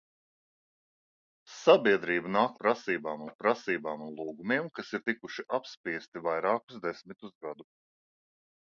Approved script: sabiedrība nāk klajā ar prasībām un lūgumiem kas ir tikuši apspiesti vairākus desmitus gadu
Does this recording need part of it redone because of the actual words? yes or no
yes